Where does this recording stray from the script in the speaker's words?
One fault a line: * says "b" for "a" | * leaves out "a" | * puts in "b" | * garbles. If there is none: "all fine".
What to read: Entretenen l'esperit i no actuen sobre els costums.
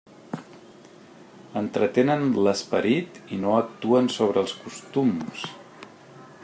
all fine